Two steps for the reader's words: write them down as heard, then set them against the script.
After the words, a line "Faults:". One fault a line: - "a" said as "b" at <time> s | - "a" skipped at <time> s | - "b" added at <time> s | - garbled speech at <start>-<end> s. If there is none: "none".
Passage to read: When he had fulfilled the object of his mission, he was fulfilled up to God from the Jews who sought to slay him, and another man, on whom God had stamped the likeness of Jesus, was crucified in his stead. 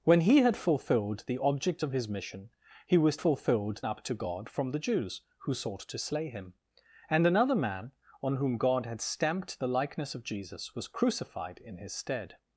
When he had fulfilled the object of his mission, he was fulfilled up to God from the Jews who sought to slay him, and another man, on whom God had stamped the likeness of Jesus, was crucified in his stead.
Faults:
none